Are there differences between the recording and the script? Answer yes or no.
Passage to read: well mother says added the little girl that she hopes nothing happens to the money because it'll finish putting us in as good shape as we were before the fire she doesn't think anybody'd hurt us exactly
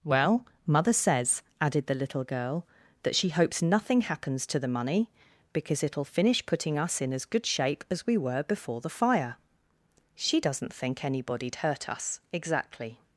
no